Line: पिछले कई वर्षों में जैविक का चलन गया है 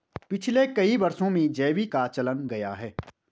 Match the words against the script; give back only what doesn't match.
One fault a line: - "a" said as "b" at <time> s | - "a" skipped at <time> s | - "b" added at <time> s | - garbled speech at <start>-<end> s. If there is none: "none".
none